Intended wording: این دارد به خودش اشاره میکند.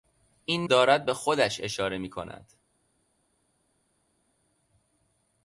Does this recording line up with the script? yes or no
yes